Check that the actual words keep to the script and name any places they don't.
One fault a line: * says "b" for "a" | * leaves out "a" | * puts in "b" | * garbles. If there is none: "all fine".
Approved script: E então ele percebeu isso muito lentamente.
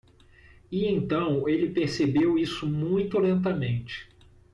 all fine